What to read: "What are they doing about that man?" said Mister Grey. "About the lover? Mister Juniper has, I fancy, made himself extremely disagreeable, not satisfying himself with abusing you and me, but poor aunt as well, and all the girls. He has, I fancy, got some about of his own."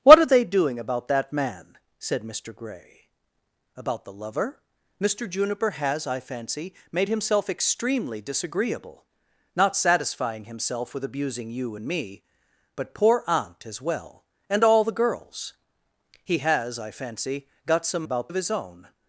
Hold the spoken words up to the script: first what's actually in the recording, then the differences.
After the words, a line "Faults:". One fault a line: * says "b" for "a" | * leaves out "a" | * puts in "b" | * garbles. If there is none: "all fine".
"What are they doing about that man?" said Mister Grey. "About the lover? Mister Juniper has, I fancy, made himself extremely disagreeable, not satisfying himself with abusing you and me, but poor aunt as well, and all the girls. He has, I fancy, got some about of his own."
Faults:
all fine